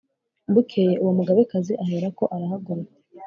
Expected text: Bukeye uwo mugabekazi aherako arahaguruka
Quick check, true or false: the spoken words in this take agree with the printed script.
true